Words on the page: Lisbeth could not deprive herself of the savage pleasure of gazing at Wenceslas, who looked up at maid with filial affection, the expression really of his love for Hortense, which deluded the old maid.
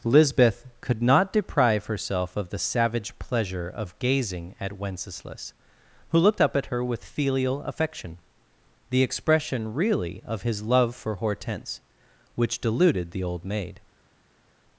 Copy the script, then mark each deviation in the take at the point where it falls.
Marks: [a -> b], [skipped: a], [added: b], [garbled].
Lisbeth could not deprive herself of the savage pleasure of gazing at Wenceslas, who looked up at [maid -> her] with filial affection, the expression really of his love for Hortense, which deluded the old maid.